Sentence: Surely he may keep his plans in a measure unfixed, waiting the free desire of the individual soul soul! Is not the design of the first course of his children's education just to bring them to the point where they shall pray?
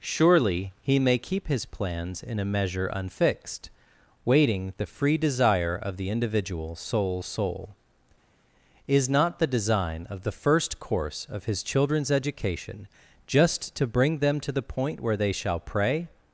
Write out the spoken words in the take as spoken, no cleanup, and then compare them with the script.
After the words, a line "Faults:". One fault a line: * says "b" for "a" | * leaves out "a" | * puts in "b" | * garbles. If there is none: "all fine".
Surely he may keep his plans in a measure unfixed, waiting the free desire of the individual soul soul! Is not the design of the first course of his children's education just to bring them to the point where they shall pray?
Faults:
all fine